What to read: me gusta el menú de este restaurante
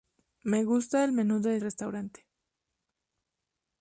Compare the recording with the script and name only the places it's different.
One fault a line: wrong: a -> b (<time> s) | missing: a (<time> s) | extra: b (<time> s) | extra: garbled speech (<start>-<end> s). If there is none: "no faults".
missing: este (1.6 s)